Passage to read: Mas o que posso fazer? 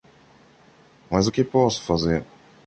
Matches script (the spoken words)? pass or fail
pass